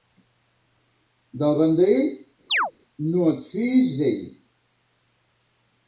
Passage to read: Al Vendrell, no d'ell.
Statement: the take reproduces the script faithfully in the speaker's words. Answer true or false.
false